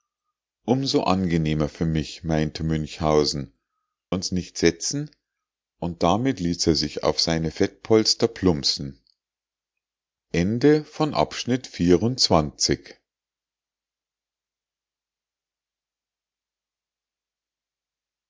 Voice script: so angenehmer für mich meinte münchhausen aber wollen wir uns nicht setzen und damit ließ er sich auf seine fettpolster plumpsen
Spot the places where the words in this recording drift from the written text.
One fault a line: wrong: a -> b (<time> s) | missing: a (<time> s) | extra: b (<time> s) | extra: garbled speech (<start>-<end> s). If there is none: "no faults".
missing: aber wollen wir (3.5 s)